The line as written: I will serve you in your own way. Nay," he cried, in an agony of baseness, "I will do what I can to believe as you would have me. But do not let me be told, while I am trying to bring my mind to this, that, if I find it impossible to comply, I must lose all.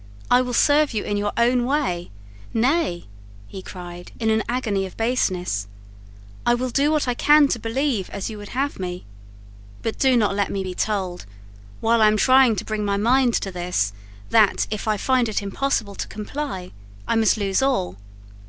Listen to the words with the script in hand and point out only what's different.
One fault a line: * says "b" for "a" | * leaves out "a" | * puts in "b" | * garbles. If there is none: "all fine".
all fine